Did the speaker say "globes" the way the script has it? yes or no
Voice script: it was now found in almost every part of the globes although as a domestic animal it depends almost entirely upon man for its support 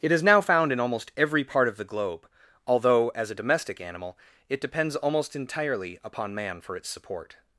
no